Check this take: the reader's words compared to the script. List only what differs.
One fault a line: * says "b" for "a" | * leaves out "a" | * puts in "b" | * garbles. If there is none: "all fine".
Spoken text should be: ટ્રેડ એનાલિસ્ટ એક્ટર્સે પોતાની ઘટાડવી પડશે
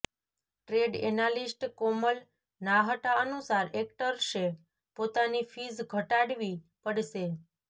* puts in "કોમલ નાહટા અનુસાર"
* puts in "ફીઝ"